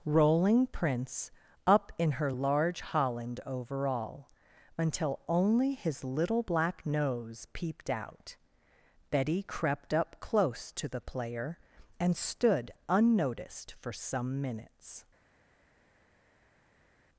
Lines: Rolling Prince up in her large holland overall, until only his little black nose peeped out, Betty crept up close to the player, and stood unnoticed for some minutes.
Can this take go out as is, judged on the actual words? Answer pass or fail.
pass